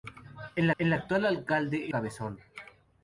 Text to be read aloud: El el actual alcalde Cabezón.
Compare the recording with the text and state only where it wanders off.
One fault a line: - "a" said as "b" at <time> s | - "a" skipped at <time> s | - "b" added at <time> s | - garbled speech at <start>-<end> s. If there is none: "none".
none